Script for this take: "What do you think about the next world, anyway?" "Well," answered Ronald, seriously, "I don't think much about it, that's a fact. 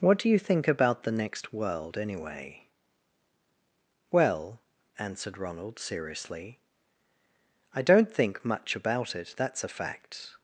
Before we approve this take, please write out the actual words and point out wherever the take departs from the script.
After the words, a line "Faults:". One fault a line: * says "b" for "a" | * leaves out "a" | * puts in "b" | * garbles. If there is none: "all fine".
"What do you think about the next world, anyway?" "Well," answered Ronald, seriously, "I don't think much about it, that's a fact.
Faults:
all fine